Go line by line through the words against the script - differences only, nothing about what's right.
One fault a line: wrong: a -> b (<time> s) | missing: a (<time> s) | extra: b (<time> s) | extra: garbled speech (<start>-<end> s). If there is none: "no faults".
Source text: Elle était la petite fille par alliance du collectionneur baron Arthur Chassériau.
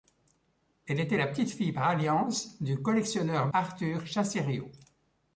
missing: baron (3.5 s)